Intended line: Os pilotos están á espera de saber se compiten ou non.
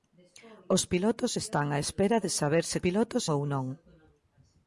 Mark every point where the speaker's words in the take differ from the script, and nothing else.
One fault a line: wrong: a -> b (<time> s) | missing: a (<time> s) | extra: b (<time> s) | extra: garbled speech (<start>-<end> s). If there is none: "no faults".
wrong: compiten -> pilotos (2.8 s)